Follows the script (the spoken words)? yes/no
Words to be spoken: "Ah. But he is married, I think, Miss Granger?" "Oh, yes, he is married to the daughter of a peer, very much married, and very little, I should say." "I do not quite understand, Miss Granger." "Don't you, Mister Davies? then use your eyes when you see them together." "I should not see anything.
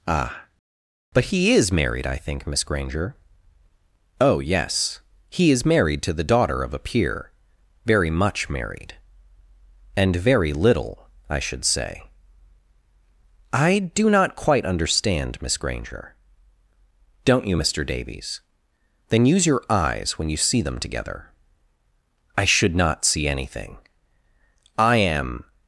no